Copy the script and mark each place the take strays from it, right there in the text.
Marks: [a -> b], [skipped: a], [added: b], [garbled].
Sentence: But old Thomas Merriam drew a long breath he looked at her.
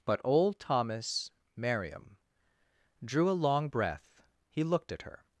But old Thomas Merriam drew a long breath he looked at her.